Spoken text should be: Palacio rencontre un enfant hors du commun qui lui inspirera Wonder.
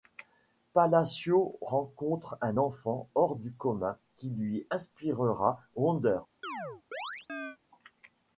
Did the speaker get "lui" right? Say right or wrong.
right